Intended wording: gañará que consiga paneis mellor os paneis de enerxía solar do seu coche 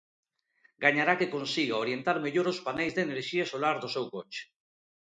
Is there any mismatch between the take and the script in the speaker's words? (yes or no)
yes